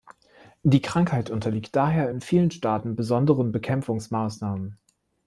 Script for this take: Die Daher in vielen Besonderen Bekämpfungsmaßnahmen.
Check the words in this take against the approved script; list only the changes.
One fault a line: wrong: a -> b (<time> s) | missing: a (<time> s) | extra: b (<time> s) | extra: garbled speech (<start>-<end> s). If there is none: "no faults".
extra: Krankheit unterliegt (0.8 s)
extra: Staaten (2.5 s)